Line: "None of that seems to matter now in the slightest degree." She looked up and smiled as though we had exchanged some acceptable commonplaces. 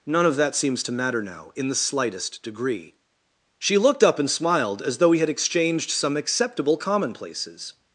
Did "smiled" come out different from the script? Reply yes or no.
no